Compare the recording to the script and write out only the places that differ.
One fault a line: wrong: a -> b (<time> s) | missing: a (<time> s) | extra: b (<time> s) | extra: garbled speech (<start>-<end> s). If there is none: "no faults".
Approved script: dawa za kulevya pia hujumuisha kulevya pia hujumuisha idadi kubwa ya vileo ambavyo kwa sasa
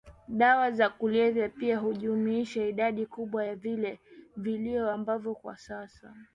missing: kulevya pia hujumuisha (2.6 s)